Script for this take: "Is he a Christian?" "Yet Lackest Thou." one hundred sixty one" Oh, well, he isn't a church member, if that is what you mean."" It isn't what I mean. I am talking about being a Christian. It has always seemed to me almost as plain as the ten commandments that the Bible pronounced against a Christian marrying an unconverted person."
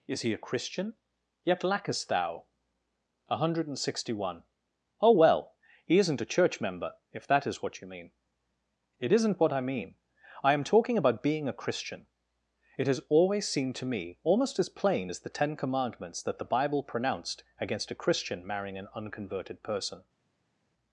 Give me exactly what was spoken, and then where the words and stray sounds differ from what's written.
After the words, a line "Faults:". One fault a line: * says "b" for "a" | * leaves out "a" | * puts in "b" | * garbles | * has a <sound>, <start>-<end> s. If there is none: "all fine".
"Is he a Christian?" "Yet Lackest Thou." one hundred sixty one" Oh, well, he isn't a church member, if that is what you mean."" It isn't what I mean. I am talking about being a Christian. It has always seemed to me almost as plain as the ten commandments that the Bible pronounced against a Christian marrying an unconverted person."
Faults:
all fine